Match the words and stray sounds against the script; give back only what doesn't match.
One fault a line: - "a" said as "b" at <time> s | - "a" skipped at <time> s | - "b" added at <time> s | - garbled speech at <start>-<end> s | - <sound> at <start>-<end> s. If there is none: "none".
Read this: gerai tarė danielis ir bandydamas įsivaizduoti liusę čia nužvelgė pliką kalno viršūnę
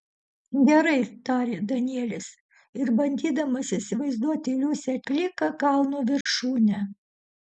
- "čia nužvelgė" skipped at 5.0 s
- dropout at 6.2-6.3 s